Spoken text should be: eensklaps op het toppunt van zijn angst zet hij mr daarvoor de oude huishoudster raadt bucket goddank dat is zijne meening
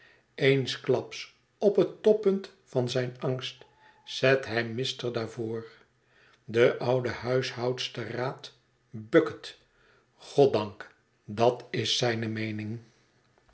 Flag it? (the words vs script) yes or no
no